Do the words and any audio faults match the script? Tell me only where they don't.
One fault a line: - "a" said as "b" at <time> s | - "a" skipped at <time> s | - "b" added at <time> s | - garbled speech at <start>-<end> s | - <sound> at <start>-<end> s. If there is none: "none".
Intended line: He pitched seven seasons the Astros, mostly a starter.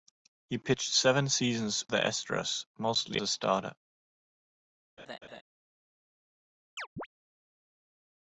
- laugh at 5.0-5.4 s
- chirp at 6.8-7.1 s